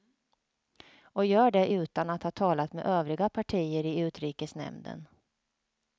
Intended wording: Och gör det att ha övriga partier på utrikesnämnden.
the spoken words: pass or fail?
fail